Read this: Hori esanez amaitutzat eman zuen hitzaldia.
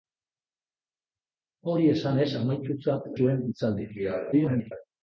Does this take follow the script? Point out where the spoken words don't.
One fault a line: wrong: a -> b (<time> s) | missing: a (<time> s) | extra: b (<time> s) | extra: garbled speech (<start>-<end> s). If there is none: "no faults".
missing: eman (3.1 s)
extra: garbled speech (4.3-4.7 s)